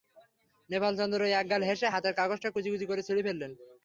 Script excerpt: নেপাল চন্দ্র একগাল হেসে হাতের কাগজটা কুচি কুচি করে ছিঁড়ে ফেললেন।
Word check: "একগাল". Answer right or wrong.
right